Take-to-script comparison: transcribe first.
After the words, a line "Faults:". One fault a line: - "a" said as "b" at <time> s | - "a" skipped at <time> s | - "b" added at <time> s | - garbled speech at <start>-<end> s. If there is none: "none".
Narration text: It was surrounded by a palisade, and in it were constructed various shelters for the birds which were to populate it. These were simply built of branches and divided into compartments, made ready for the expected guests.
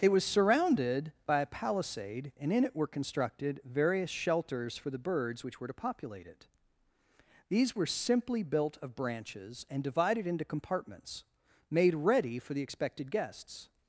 It was surrounded by a palisade, and in it were constructed various shelters for the birds which were to populate it. These were simply built of branches and divided into compartments, made ready for the expected guests.
Faults:
none